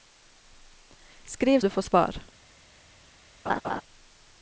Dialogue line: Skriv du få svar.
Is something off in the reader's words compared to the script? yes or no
no